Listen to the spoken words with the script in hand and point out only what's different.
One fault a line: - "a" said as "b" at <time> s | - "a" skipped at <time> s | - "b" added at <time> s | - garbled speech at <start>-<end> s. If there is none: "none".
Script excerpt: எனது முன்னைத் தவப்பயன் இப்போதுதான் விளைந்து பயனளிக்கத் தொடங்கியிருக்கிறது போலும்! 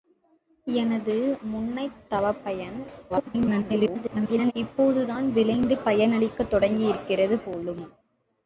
- garbled speech at 3.1-4.5 s